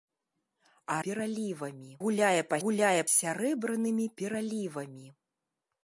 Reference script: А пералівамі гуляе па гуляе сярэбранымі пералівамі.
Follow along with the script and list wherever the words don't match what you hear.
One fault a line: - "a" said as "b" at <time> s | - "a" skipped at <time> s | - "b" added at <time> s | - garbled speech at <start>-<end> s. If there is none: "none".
none